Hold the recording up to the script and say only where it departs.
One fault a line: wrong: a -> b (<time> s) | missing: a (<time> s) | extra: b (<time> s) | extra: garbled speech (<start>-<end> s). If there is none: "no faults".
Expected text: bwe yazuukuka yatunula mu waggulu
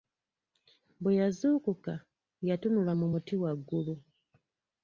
extra: muti (3.1 s)